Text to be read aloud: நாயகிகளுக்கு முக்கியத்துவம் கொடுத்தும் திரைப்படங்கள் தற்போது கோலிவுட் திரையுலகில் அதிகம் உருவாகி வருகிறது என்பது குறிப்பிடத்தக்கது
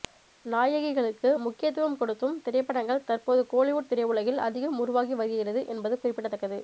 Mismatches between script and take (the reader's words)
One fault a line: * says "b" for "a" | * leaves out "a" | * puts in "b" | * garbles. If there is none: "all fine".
all fine